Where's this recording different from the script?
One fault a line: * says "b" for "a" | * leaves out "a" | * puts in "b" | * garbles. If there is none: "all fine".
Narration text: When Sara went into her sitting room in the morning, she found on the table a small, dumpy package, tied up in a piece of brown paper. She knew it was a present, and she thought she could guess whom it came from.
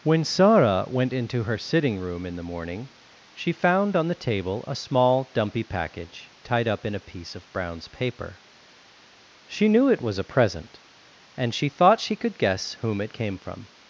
* says "browns" for "brown"